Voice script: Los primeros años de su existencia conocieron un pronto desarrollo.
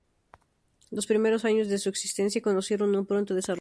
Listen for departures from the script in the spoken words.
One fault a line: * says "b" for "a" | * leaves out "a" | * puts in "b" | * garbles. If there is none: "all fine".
all fine